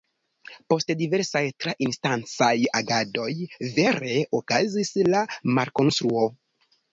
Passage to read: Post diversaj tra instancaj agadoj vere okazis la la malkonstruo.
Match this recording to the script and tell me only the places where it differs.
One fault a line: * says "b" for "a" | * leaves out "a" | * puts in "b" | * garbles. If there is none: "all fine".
* leaves out "la"